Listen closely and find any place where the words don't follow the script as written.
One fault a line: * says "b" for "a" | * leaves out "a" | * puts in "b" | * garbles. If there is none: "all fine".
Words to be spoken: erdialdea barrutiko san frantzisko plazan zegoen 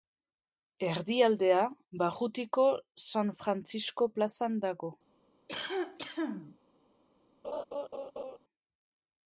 * says "dago" for "zegoen"